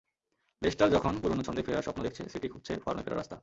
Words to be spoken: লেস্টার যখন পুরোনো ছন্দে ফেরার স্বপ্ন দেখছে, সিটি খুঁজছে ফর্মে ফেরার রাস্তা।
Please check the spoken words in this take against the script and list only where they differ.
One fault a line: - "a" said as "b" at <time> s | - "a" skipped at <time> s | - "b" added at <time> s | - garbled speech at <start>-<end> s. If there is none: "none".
none